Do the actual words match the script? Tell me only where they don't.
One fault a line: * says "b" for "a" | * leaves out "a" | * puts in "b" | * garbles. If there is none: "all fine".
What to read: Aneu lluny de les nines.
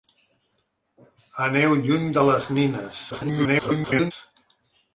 * garbles